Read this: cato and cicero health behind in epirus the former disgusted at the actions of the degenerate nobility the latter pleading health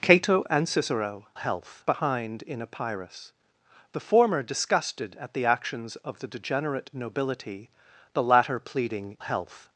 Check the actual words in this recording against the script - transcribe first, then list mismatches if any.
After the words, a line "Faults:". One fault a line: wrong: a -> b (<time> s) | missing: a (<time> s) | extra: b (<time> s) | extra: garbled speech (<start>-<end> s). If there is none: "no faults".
cato and cicero health behind in epirus the former disgusted at the actions of the degenerate nobility the latter pleading health
Faults:
no faults